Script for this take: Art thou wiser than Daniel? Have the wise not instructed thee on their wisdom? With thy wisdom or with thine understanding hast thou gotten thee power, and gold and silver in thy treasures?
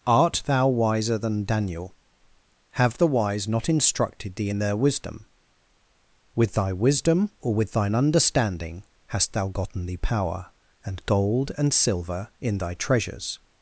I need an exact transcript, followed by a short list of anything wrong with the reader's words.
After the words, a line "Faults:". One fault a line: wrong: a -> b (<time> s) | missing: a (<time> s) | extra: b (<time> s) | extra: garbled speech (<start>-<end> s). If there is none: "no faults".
Art thou wiser than Daniel? Have the wise not instructed thee in their wisdom? With thy wisdom or with thine understanding hast thou gotten thee power, and gold and silver in thy treasures?
Faults:
wrong: on -> in (4.5 s)